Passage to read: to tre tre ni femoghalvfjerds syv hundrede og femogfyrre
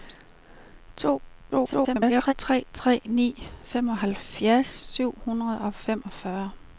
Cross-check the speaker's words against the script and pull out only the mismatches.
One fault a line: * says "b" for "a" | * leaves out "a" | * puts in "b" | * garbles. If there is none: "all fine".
* garbles